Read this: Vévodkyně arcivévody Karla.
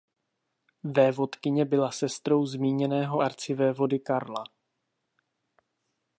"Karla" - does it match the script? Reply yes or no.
yes